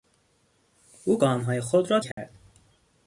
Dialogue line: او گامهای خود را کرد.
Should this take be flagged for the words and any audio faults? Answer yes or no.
yes